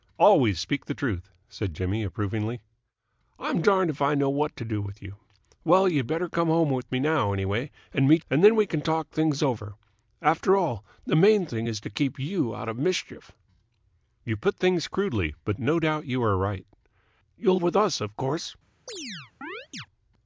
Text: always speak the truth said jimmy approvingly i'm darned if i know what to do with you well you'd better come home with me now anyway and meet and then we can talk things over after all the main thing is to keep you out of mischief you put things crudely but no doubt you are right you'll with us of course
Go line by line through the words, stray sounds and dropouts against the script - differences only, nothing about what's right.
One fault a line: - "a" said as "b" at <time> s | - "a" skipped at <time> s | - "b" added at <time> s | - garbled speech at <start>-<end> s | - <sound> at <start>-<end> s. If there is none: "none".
- chirp at 18.9-19.9 s